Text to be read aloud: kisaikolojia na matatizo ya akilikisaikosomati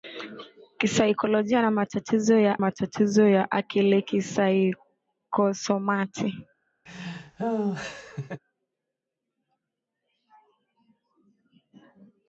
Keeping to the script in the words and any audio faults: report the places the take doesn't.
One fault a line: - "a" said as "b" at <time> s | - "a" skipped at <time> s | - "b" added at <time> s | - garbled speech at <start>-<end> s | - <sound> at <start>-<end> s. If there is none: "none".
- "matatizo ya" added at 2.6 s
- laugh at 6.9-8.4 s